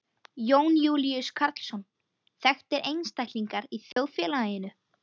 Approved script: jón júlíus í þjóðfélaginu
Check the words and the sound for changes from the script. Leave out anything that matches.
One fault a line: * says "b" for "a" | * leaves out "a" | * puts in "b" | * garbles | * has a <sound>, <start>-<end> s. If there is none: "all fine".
* puts in "karlsson þekktir einstaklingar"
* has a dropout, 3.9-4.0 s